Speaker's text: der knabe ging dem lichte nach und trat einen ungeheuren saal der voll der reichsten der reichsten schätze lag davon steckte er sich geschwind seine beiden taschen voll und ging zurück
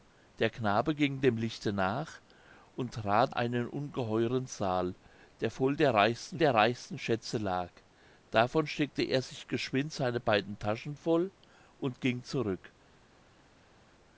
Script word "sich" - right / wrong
right